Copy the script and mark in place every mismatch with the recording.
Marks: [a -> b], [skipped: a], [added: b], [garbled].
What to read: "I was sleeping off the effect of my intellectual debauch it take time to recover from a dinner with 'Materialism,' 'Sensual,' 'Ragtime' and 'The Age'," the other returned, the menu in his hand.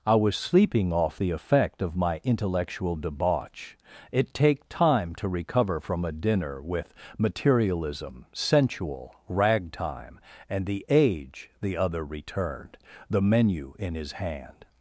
"I was sleeping off the effect of my intellectual debauch it take time to recover from a dinner with 'Materialism,' 'Sensual,' 'Ragtime' and 'The Age'," the other returned, the menu in his hand.